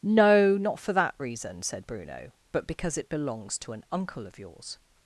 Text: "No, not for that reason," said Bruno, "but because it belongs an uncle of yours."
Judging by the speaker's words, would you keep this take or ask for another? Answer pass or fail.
fail